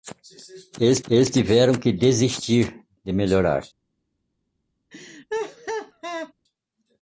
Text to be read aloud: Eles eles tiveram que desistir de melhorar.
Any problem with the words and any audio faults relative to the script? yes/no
yes